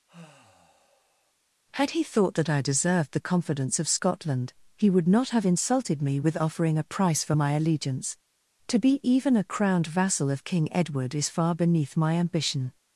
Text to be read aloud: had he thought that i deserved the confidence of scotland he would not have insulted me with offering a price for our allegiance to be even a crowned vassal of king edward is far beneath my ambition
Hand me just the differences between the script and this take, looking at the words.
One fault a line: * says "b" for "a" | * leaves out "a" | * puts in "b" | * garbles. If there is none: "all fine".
* says "my" for "our"